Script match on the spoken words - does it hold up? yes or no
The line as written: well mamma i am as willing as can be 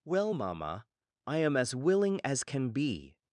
yes